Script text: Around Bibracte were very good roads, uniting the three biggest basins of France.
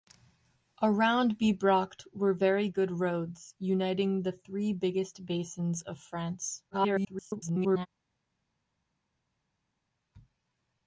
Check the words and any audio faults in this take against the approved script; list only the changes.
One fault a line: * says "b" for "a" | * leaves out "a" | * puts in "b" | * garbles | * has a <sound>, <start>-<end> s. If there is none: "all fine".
* garbles